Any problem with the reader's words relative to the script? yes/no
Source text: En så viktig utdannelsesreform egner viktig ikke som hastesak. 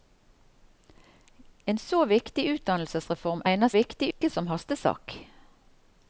no